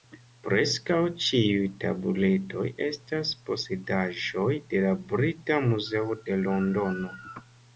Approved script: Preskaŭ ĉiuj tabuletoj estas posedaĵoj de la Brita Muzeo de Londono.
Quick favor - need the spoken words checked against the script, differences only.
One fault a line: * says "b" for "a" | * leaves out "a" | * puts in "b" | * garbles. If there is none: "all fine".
all fine